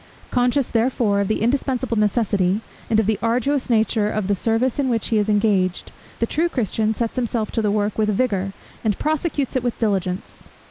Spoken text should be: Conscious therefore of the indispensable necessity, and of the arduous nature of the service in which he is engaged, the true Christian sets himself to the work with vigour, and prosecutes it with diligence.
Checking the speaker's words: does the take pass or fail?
pass